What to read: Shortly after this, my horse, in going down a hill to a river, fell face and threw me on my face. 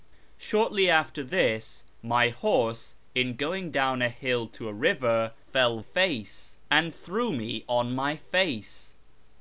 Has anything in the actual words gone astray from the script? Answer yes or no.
no